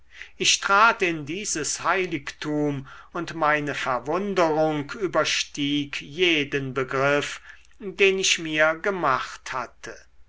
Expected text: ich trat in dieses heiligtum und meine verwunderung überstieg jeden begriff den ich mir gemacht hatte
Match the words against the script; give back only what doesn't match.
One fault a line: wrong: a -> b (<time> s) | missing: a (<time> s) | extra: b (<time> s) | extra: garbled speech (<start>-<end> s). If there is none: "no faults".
no faults